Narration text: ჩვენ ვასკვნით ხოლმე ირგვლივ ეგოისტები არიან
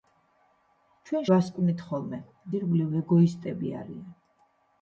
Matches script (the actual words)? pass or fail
pass